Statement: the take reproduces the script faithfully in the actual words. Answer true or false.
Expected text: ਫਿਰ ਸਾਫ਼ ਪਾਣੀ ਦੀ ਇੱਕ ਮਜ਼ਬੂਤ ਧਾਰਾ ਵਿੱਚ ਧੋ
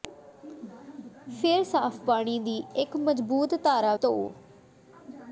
false